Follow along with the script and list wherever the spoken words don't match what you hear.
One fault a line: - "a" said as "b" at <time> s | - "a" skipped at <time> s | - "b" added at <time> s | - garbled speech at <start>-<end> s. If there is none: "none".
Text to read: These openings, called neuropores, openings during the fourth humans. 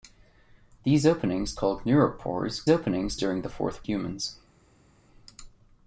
none